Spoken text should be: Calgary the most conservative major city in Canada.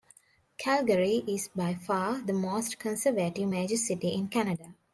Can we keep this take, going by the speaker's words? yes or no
no